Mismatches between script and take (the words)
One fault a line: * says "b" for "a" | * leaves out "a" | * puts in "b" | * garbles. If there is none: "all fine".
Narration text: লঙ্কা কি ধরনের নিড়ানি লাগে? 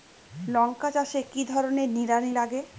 * puts in "চাষে"